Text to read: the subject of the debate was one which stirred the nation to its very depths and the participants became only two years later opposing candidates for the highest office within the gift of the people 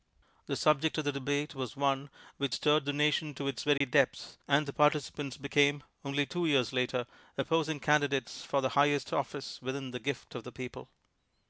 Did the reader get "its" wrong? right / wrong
right